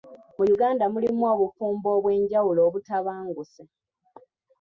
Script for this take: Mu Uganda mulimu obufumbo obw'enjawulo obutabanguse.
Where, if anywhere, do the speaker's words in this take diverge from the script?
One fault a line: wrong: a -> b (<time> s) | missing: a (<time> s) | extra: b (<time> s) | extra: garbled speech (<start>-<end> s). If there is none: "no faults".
no faults